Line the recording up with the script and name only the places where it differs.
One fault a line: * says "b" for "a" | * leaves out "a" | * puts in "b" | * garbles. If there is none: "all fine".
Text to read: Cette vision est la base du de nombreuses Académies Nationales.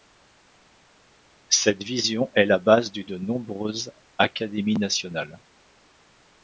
all fine